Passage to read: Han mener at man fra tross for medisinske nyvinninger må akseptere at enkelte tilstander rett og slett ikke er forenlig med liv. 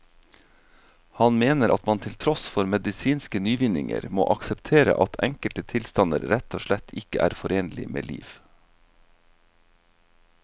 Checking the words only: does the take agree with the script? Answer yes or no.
no